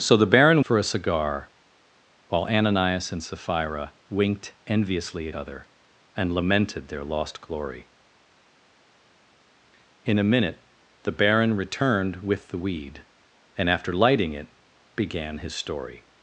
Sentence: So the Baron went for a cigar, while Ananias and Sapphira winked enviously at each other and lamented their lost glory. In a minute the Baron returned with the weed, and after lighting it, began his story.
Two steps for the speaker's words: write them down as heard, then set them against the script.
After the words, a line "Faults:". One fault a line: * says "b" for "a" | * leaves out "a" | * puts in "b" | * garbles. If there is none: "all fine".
So the Baron for a cigar, while Ananias and Sapphira winked enviously at other and lamented their lost glory. In a minute the Baron returned with the weed, and after lighting it, began his story.
Faults:
* leaves out "went"
* leaves out "each"